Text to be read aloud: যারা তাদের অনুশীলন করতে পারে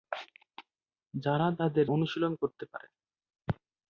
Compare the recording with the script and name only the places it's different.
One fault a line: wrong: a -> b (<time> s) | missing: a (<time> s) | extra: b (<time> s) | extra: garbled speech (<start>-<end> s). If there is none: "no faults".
no faults